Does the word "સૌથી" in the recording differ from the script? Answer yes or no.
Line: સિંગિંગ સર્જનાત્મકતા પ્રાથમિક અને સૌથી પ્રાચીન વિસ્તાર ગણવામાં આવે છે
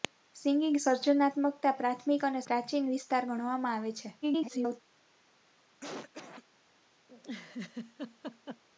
yes